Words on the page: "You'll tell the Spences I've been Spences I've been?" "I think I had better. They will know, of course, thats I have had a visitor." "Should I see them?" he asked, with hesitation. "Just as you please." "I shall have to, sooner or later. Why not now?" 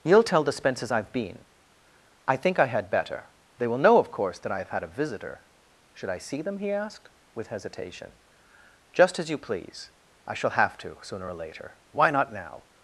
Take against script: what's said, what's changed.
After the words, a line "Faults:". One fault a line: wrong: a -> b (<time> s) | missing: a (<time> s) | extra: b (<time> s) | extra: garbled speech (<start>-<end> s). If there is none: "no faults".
"You'll tell the Spences I've been?" "I think I had better. They will know, of course, that I have had a visitor." "Should I see them?" he asked, with hesitation. "Just as you please." "I shall have to, sooner or later. Why not now?"
Faults:
missing: Spences I've been (1.4 s)
wrong: thats -> that (4.4 s)